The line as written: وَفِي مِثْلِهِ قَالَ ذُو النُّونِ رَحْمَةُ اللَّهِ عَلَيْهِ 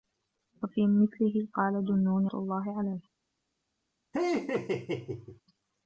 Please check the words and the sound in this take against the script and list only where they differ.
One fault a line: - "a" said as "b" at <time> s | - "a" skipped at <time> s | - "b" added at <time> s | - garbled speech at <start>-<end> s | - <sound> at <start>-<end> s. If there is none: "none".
- "رَحْمَةُ" skipped at 2.3 s
- laugh at 4.1-5.4 s